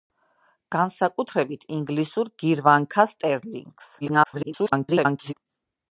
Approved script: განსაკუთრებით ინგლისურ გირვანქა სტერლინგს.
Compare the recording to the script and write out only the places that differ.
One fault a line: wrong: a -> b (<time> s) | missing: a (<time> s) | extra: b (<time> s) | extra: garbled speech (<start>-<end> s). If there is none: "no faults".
extra: garbled speech (4.0-5.3 s)